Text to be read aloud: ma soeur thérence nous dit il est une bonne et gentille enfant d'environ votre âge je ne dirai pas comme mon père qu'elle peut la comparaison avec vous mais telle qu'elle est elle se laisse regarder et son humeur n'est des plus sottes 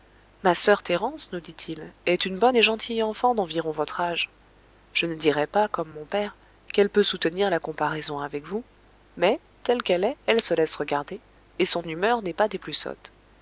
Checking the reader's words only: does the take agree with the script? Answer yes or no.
no